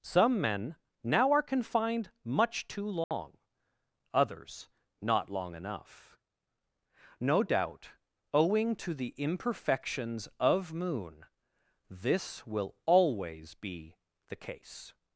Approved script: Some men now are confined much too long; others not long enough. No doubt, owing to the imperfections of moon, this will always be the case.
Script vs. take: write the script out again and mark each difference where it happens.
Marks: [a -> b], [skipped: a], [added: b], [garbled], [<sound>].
Some men now are confined much too long; [dropout] others not long enough. No doubt, owing to the imperfections of moon, this will always be the case.